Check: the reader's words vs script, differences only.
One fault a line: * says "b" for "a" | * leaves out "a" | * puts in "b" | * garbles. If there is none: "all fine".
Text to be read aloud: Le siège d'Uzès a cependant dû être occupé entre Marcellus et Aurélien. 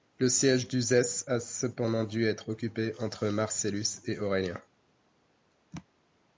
all fine